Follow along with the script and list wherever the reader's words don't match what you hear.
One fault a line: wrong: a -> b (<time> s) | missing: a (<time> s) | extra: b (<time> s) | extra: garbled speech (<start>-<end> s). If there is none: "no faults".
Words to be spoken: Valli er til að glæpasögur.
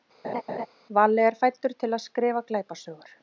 extra: fæddur (1.4 s)
extra: skrifa (2.1 s)